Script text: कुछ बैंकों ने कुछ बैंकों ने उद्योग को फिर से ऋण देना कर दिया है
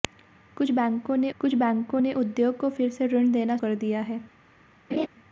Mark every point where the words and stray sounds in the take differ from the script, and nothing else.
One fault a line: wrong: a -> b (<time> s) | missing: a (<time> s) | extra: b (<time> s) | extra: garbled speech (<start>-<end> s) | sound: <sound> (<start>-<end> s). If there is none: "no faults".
sound: laugh (4.9-5.1 s)